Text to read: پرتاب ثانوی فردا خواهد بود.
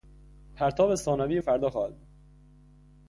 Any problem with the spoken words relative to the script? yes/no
no